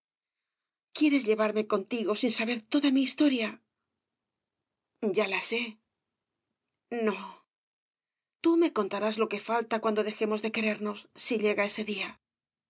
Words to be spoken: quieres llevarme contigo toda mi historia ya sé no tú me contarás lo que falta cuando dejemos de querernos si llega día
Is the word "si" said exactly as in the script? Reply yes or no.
yes